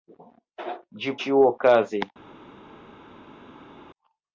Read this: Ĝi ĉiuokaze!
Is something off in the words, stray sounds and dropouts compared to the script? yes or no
no